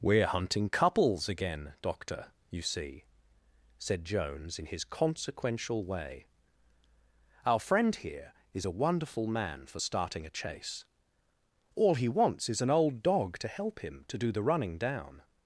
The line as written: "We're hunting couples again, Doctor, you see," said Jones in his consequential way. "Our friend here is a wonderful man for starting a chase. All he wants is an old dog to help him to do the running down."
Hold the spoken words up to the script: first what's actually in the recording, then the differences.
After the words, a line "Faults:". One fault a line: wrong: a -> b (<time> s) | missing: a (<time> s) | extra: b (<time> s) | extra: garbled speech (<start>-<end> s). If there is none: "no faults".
"We're hunting couples again, Doctor, you see," said Jones in his consequential way. "Our friend here is a wonderful man for starting a chase. All he wants is an old dog to help him to do the running down."
Faults:
no faults